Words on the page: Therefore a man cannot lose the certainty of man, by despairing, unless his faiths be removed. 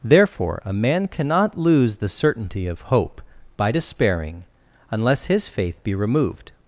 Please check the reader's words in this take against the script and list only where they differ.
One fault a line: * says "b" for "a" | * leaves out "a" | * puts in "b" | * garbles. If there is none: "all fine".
* says "hope" for "man"
* says "faith" for "faiths"